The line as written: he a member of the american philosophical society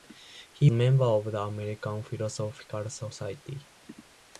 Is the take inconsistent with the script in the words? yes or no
no